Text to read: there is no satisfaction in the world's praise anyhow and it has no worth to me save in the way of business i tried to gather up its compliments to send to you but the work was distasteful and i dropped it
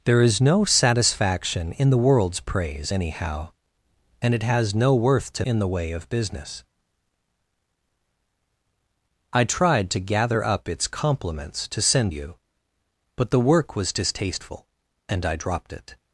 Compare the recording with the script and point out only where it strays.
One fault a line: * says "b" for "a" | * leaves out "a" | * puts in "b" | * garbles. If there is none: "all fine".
* leaves out "me save"
* leaves out "to"